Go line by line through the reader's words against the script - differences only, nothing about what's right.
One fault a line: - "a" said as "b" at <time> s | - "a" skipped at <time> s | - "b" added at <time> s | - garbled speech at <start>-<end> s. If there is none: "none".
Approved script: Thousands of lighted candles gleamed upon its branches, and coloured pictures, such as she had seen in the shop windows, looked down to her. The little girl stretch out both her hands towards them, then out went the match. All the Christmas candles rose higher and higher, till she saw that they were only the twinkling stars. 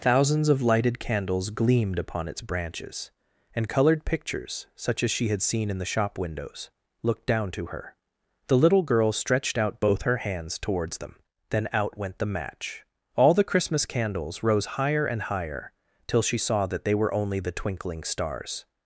- "stretch" said as "stretched" at 9.1 s